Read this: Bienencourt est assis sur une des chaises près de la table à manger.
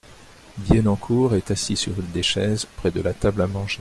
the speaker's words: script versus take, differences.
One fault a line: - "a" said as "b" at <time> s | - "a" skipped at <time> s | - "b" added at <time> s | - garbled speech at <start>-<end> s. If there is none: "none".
none